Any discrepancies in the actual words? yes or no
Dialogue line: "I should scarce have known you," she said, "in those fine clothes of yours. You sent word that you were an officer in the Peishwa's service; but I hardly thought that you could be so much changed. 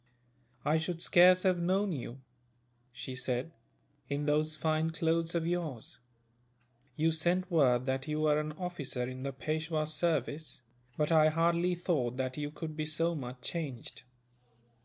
no